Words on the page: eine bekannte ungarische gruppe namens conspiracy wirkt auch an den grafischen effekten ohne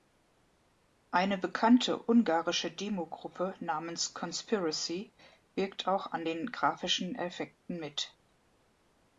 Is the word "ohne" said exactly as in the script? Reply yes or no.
no